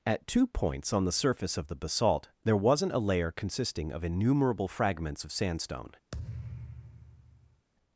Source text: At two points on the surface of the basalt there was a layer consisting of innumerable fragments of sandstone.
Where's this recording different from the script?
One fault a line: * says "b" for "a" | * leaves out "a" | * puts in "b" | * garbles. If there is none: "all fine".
* says "wasn't" for "was"